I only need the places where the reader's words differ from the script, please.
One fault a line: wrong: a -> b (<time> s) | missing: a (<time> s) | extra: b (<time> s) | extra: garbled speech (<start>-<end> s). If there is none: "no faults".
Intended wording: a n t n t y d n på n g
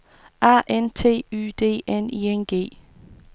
missing: n t (1.3 s)
wrong: på -> i (2.1 s)